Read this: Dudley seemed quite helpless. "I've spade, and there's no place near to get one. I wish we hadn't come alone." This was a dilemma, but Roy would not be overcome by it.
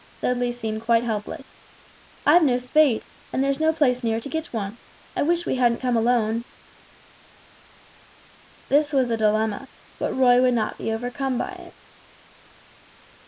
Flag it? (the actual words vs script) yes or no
yes